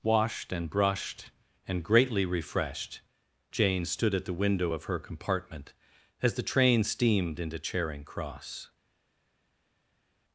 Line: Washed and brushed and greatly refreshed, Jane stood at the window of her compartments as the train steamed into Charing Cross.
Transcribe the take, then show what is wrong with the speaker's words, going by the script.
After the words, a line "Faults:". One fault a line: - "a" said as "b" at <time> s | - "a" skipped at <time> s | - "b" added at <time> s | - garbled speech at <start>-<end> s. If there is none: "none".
Washed and brushed and greatly refreshed, Jane stood at the window of her compartment as the train steamed into Charing Cross.
Faults:
- "compartments" said as "compartment" at 5.0 s